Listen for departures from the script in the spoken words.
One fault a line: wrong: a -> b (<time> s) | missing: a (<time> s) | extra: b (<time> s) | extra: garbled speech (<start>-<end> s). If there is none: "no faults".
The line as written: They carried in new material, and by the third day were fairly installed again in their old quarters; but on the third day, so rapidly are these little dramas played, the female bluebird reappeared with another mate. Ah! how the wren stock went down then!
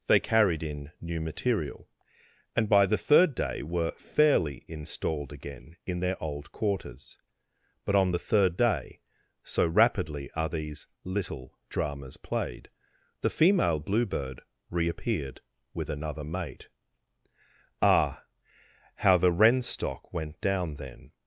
no faults